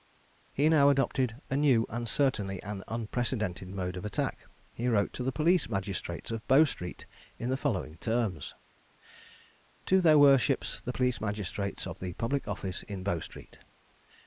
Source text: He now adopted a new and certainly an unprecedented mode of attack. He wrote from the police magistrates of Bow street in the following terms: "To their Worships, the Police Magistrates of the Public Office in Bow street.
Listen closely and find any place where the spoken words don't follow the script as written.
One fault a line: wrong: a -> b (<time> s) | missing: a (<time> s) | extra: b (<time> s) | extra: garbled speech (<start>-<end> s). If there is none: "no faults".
wrong: from -> to (5.1 s)